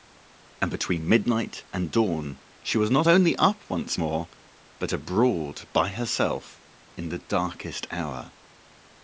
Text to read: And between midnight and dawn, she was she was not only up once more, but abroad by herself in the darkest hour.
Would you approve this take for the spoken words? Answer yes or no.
no